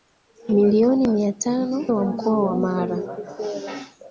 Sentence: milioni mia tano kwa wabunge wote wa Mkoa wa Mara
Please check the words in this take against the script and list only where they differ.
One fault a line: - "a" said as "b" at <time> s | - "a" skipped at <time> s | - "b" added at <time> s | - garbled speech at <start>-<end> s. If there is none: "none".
- "kwa wabunge wote" skipped at 1.9 s